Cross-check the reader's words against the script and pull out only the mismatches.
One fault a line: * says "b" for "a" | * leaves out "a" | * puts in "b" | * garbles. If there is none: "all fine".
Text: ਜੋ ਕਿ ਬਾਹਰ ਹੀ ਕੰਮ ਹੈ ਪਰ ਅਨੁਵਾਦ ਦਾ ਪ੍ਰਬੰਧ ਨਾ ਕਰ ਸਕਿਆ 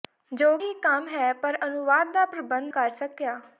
* leaves out "ਕਿ ਬਾਹਰ"
* leaves out "ਨਾ"